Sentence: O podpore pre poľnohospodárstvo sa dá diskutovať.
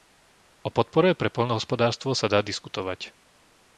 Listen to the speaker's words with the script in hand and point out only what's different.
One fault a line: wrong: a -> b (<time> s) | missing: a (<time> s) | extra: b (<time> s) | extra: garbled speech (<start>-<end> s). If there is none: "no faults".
no faults